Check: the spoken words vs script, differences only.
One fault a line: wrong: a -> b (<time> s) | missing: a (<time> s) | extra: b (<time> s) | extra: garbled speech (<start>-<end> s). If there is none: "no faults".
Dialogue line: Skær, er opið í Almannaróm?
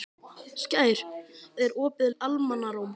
no faults